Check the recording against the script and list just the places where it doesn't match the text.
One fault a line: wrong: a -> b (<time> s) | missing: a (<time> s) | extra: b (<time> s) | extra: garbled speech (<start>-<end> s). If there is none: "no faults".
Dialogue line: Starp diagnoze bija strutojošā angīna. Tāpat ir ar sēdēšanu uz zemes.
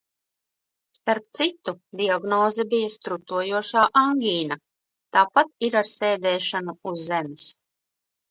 extra: citu (1.4 s)